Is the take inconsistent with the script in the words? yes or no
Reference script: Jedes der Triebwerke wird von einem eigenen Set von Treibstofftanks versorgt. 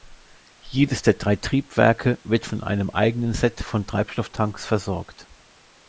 yes